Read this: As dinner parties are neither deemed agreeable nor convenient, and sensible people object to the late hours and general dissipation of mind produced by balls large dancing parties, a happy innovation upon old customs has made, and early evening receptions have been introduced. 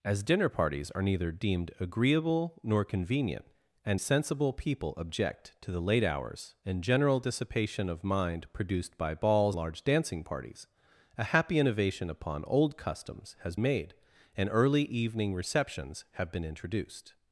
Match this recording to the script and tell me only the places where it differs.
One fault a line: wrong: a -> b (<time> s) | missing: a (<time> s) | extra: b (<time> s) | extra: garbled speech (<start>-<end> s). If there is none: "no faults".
no faults